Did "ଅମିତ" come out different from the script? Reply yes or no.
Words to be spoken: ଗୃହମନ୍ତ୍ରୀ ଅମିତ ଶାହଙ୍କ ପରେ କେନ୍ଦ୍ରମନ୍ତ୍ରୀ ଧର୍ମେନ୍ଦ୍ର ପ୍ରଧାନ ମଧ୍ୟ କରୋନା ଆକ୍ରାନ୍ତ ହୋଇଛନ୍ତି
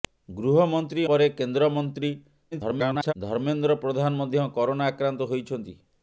yes